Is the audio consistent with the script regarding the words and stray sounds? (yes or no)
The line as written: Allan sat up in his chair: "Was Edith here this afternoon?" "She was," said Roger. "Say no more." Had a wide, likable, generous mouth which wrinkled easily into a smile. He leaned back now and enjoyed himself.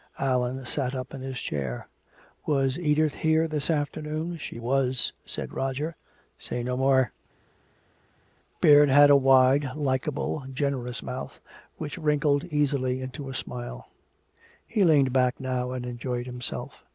no